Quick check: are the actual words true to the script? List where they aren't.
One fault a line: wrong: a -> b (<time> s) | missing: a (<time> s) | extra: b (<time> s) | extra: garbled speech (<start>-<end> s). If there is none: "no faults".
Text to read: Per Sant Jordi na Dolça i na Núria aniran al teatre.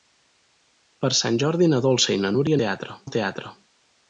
wrong: aniran -> teatre (2.6 s)